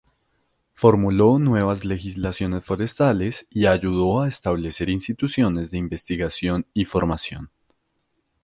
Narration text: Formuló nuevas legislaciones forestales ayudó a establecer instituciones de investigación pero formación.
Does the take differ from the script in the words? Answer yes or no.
yes